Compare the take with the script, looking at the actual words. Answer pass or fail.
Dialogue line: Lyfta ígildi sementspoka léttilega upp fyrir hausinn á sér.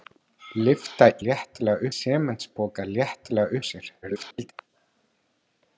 fail